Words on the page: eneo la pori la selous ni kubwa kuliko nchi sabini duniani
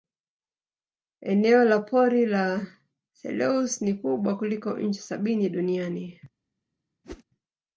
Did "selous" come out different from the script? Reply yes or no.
no